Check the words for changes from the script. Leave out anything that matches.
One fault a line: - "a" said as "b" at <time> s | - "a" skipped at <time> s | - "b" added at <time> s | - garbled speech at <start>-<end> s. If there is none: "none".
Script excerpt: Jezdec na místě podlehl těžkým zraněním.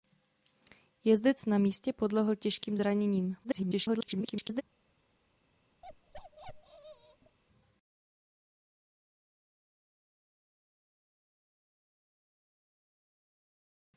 - garbled speech at 3.4-4.6 s